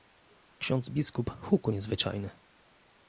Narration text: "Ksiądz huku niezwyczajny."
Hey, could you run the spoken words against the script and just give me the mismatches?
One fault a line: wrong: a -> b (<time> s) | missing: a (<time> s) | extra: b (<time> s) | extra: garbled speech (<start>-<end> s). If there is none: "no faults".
extra: biskup (0.9 s)